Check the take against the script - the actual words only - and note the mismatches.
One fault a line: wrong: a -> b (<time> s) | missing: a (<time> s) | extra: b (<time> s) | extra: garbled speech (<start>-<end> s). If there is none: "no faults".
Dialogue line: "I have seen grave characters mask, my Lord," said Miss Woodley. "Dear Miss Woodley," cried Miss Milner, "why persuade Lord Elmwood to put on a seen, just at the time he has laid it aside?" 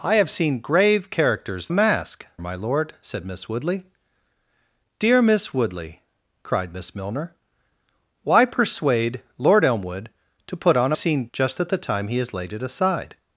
no faults